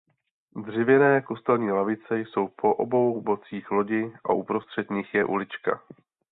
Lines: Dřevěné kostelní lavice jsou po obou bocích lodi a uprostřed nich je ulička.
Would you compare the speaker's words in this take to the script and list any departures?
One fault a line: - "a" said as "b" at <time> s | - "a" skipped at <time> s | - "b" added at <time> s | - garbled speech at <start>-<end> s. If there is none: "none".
none